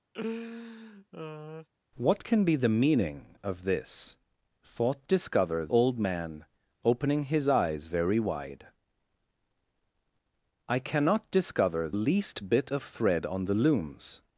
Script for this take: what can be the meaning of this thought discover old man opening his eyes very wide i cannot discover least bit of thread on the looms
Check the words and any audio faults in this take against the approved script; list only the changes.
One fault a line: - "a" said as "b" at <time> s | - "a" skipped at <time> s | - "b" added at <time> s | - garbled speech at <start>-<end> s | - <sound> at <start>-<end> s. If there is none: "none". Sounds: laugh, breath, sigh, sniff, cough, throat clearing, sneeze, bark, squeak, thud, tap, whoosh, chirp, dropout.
- laugh at 0.1-1.7 s